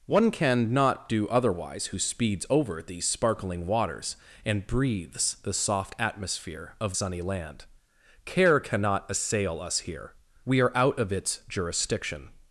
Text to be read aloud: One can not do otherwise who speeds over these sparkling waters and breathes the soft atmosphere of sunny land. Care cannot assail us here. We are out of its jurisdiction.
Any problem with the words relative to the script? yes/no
no